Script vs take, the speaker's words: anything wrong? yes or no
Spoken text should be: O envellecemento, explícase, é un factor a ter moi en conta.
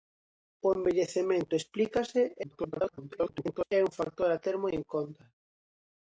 yes